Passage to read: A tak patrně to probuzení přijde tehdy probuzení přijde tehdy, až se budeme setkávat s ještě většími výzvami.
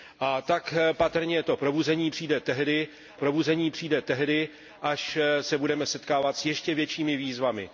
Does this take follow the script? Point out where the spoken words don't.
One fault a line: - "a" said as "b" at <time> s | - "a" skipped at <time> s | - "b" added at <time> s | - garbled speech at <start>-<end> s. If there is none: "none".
none